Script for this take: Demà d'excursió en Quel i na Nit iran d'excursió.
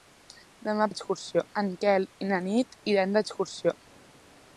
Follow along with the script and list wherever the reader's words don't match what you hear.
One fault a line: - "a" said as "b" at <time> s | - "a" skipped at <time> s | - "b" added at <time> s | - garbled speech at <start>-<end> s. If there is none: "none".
none